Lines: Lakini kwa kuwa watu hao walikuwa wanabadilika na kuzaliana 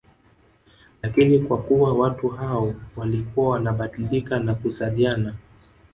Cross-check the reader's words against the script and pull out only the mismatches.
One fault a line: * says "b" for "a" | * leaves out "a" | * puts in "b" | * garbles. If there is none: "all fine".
all fine